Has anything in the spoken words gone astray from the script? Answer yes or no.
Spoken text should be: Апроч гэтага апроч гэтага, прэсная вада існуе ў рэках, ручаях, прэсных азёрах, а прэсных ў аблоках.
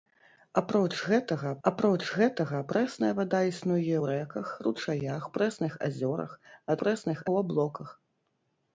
no